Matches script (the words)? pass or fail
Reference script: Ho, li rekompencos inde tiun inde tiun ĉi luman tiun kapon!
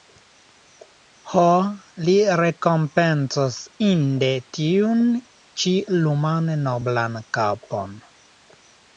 fail